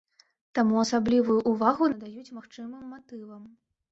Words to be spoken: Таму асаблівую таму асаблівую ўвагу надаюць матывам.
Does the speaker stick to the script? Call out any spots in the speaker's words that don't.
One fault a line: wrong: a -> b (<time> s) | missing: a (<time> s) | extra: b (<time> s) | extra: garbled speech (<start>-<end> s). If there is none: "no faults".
missing: таму асаблівую (1.4 s)
extra: магчымым (2.4 s)